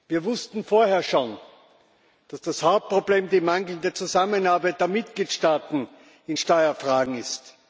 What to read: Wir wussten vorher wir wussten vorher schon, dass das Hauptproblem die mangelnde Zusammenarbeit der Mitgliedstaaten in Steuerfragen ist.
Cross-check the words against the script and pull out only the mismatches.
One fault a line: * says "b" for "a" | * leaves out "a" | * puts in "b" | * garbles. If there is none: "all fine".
* leaves out "wir wussten vorher"